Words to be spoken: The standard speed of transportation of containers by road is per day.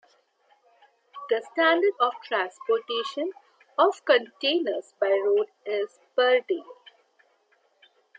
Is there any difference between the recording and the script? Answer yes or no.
yes